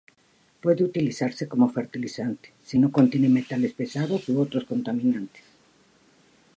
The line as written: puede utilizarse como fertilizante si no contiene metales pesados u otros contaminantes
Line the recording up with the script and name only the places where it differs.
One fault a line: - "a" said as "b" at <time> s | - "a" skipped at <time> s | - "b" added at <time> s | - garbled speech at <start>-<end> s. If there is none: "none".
none